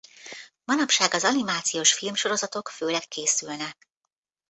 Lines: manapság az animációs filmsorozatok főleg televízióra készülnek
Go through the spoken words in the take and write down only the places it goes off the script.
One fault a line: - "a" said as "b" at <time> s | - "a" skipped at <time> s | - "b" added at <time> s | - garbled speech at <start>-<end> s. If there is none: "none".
- "televízióra" skipped at 3.0 s